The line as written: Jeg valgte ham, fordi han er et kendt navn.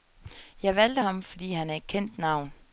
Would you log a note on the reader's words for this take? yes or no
no